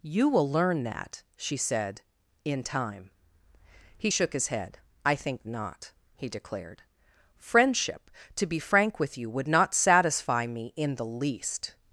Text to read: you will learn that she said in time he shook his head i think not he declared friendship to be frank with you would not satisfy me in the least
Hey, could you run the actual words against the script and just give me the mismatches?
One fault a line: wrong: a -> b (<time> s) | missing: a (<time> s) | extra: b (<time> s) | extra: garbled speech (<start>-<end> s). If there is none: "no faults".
no faults